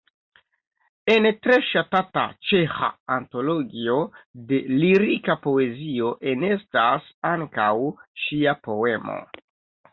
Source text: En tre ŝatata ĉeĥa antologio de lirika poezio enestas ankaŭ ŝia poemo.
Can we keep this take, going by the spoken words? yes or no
yes